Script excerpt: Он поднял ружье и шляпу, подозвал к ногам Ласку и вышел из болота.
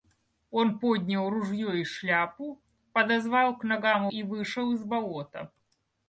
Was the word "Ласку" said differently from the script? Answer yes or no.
yes